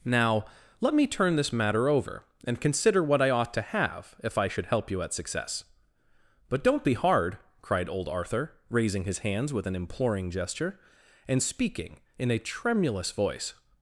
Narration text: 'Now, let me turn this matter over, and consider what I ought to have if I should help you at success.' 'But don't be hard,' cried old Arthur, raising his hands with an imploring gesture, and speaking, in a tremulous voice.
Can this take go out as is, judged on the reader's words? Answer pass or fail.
pass